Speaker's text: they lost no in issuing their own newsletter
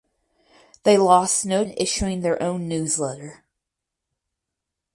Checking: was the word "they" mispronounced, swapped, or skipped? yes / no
no